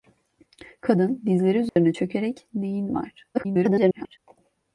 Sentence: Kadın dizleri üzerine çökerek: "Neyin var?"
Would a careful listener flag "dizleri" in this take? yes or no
no